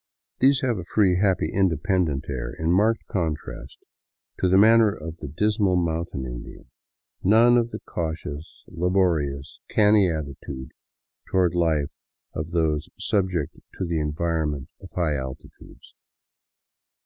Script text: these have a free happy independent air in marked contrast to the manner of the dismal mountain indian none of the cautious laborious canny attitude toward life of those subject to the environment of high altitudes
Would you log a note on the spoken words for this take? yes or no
no